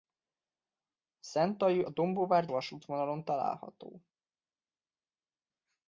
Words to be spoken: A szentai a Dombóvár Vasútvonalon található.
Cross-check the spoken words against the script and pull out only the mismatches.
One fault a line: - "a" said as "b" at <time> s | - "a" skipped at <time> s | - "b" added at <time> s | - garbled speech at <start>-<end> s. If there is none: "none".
none